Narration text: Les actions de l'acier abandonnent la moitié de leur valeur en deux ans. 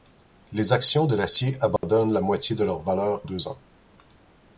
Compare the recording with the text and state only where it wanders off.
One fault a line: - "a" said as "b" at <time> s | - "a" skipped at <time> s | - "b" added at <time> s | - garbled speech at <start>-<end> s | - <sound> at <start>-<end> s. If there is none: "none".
- dropout at 1.8-1.8 s
- "en" skipped at 3.2 s